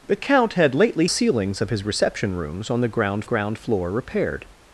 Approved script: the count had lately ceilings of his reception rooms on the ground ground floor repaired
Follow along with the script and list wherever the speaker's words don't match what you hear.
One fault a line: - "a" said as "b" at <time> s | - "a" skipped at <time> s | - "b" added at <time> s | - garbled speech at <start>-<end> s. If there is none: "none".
none